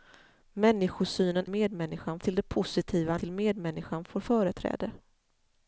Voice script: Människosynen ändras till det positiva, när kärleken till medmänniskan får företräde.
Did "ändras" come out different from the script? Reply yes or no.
yes